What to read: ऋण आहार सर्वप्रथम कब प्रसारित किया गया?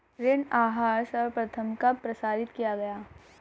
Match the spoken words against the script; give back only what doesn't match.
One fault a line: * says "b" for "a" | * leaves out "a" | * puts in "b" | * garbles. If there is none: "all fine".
all fine